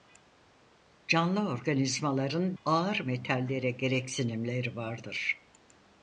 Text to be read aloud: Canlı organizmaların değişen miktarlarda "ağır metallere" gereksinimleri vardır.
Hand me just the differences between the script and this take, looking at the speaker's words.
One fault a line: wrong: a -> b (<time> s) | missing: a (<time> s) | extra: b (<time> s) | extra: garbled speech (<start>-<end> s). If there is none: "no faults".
missing: değişen miktarlarda (2.6 s)